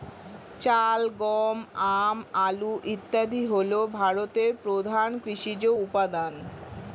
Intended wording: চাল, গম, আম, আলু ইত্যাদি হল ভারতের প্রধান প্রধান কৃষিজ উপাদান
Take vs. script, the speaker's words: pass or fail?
fail